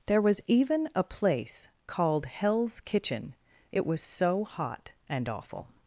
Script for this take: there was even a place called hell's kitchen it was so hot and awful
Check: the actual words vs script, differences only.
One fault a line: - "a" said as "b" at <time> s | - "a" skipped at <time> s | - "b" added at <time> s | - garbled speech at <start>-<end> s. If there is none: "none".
none